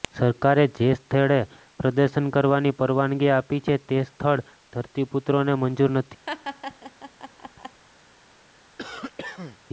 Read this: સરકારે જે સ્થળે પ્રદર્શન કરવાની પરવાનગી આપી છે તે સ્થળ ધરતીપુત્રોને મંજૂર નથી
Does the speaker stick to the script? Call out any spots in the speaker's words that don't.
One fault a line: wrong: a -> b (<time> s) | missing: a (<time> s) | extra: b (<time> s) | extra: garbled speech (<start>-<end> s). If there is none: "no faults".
no faults